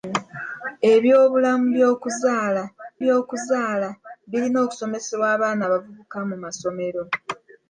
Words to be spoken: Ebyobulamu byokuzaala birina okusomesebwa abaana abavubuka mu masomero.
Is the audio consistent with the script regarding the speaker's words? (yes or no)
no